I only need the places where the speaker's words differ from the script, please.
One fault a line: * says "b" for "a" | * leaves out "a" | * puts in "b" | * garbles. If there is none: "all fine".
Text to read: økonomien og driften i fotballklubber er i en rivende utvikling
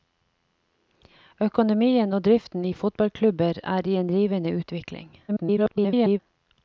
* garbles